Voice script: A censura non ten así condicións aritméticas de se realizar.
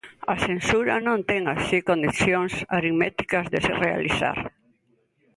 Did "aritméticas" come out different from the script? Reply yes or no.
no